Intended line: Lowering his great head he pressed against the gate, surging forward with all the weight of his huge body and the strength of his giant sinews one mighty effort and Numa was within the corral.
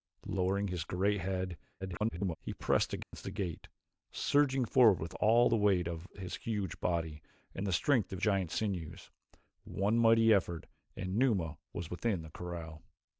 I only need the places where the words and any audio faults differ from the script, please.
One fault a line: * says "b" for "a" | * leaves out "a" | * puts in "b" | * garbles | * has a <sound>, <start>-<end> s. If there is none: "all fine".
* garbles
* has a dropout, 3.0-3.1 s
* leaves out "his"